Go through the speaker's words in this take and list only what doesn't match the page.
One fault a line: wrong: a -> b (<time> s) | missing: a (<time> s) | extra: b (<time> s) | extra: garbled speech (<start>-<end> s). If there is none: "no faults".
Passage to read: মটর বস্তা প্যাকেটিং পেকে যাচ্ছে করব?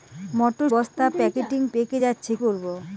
no faults